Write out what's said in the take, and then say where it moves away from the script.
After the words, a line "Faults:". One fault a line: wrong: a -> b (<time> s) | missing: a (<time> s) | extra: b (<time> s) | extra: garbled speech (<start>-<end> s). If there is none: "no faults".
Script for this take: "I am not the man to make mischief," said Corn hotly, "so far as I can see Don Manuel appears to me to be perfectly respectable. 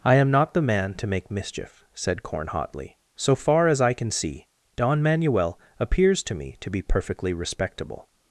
"I am not the man to make mischief," said Corn hotly, "so far as I can see Don Manuel appears to me to be perfectly respectable.
Faults:
no faults